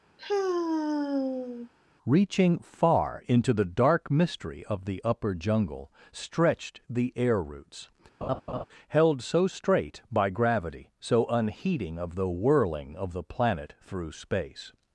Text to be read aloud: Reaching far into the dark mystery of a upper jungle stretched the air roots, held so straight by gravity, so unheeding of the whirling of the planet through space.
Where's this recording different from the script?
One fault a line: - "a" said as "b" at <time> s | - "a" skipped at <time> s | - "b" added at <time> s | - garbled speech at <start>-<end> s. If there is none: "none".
- "a" said as "the" at 4.9 s